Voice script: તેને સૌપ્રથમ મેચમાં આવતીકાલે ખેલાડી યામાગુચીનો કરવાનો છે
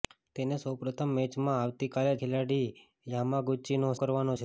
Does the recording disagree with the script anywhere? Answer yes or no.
no